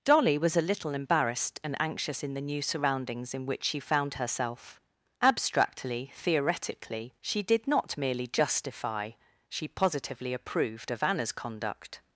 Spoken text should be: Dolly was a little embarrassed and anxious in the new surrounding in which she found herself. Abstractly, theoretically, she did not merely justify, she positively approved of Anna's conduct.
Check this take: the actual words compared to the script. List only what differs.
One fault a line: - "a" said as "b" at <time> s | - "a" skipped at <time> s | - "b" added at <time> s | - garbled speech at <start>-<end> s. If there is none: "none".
- "surrounding" said as "surroundings" at 2.6 s